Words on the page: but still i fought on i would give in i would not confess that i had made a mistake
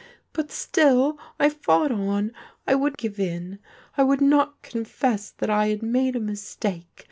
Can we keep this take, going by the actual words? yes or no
yes